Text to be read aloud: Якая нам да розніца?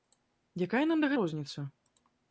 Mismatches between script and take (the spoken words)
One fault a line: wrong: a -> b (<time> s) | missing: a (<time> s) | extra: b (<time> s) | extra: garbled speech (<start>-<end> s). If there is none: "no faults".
no faults